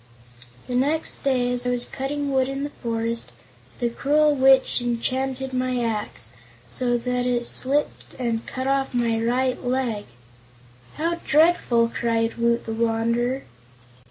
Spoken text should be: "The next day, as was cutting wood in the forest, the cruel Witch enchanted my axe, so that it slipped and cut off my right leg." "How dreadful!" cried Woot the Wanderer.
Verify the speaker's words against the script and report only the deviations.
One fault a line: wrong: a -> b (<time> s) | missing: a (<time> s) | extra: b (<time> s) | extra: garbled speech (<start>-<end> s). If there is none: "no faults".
no faults